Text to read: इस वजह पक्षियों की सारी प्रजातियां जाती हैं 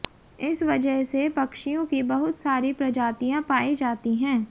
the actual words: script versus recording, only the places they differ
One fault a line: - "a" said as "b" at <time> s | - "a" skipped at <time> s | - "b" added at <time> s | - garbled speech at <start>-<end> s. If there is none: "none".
- "से" added at 1.0 s
- "बहुत" added at 2.0 s
- "पाई" added at 3.4 s